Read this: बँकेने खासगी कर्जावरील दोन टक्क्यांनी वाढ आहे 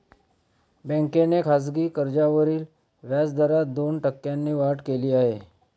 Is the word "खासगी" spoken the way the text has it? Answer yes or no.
yes